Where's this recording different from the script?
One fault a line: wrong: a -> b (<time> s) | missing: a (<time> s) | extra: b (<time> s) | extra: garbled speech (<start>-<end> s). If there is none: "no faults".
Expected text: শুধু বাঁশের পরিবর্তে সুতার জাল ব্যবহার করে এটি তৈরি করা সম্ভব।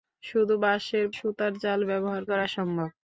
missing: পরিবর্তে (1.1 s)
missing: করে এটি তৈরি (2.2 s)